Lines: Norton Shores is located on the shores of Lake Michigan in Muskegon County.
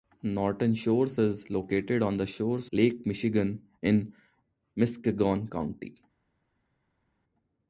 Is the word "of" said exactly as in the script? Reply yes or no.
no